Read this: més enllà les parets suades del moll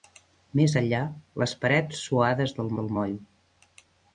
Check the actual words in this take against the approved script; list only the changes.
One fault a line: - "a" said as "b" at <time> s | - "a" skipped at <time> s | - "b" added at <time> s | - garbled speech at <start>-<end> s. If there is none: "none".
- "del" added at 2.8 s